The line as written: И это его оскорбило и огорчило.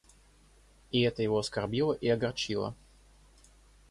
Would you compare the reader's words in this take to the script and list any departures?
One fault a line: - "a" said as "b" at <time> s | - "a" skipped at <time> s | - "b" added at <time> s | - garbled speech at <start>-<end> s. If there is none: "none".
none